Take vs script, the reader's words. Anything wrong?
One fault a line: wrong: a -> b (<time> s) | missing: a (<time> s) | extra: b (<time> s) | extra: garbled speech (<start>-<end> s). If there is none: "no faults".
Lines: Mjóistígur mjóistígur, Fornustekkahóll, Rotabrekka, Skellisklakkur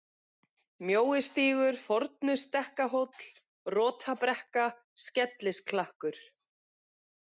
missing: mjóistígur (1.8 s)